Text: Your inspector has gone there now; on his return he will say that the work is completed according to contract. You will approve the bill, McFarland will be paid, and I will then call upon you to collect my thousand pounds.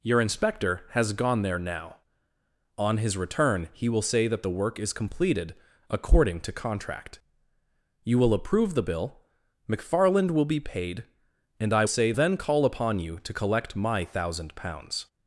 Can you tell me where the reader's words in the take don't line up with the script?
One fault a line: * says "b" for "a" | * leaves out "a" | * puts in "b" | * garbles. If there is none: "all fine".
* says "say" for "will"